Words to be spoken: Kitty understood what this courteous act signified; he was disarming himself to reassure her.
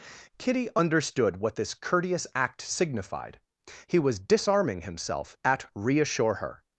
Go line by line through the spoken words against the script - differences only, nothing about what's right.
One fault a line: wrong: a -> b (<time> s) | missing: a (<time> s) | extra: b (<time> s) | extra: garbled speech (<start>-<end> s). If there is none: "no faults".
wrong: to -> at (5.4 s)